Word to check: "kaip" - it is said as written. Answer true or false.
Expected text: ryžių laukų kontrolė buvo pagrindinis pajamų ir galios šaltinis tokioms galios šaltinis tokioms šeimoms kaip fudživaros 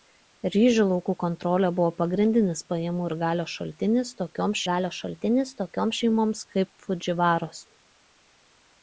true